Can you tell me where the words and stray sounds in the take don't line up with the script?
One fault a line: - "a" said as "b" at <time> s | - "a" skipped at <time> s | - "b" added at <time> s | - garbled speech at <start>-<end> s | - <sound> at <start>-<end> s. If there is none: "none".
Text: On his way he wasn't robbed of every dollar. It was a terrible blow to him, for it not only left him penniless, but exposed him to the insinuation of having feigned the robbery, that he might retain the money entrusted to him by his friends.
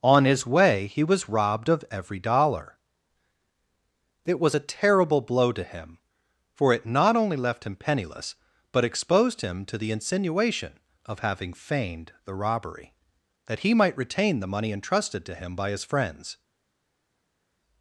- "wasn't" said as "was" at 1.0 s